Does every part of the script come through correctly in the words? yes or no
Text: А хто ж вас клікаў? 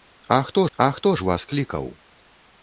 no